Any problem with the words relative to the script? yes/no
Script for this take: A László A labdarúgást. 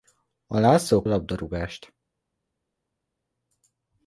no